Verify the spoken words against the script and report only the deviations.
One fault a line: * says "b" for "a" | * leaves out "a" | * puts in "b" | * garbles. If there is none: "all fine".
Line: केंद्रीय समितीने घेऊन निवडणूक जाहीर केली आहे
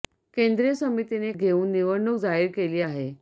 all fine